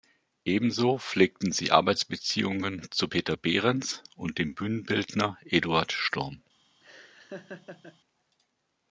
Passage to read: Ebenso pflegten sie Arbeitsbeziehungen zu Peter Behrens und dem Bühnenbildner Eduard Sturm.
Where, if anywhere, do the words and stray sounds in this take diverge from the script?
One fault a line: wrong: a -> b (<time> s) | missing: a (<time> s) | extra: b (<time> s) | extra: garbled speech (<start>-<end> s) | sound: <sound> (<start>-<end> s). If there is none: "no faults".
sound: laugh (6.8-8.0 s)